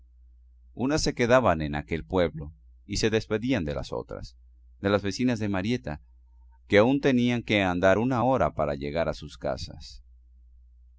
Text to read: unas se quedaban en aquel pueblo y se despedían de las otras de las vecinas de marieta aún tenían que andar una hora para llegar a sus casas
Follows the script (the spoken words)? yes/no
no